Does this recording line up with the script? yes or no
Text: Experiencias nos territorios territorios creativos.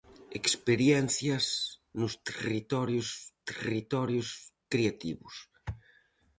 yes